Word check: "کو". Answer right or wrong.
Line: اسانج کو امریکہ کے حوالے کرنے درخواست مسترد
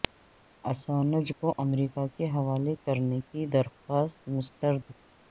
right